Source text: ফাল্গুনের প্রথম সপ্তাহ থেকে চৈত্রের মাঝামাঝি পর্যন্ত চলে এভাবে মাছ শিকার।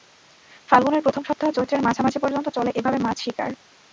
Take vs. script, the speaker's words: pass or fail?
fail